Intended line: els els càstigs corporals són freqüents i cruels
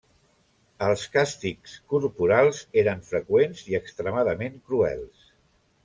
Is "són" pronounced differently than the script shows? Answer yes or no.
yes